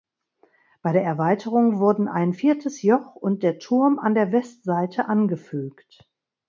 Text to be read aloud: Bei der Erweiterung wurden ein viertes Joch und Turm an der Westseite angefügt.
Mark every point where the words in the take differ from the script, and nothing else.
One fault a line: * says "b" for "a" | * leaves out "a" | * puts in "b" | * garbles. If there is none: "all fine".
* puts in "der"